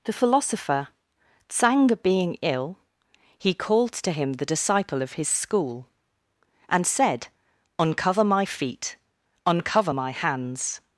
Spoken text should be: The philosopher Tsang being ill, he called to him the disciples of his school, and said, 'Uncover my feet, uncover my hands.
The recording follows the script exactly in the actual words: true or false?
false